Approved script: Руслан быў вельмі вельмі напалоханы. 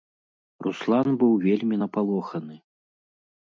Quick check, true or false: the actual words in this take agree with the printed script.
false